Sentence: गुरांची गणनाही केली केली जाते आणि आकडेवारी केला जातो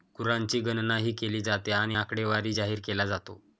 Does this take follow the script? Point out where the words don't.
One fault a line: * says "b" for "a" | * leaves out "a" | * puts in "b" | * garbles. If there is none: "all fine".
* leaves out "केली"
* puts in "जाहीर"